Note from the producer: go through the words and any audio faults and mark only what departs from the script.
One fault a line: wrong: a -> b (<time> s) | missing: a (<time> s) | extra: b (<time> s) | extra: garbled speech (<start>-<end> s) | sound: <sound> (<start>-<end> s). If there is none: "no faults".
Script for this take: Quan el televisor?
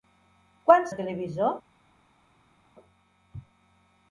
no faults